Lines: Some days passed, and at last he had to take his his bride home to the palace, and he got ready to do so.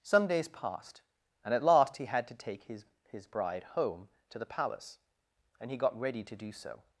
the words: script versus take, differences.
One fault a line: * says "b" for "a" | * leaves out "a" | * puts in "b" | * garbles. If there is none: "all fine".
all fine